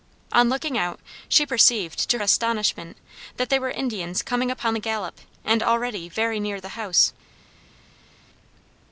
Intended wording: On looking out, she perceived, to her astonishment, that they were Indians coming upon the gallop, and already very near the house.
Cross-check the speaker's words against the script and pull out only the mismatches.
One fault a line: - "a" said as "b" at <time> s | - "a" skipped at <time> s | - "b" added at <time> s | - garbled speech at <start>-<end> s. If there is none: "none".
- "her" skipped at 2.2 s